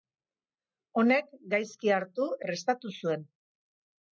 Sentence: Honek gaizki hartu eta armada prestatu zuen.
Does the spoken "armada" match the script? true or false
false